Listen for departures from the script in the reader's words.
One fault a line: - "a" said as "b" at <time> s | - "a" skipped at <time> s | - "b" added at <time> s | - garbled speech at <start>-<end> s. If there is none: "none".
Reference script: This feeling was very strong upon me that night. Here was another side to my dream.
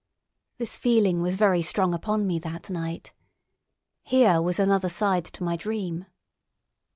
none